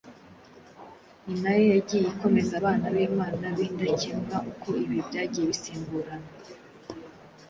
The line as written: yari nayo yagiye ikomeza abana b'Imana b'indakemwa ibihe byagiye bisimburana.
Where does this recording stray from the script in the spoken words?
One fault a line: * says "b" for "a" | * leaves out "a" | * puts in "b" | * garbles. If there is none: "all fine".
* says "ni" for "yari"
* puts in "uko"